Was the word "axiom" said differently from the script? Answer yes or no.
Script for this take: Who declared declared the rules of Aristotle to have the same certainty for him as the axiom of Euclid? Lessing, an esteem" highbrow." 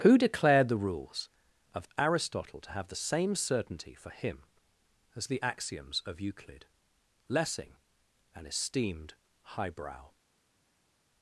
yes